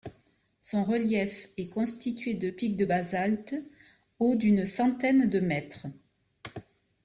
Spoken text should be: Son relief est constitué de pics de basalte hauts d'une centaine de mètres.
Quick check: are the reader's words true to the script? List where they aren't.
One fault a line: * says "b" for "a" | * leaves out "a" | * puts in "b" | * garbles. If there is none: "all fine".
all fine